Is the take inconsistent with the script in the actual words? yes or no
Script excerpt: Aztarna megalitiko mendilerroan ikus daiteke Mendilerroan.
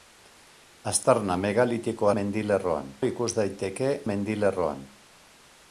no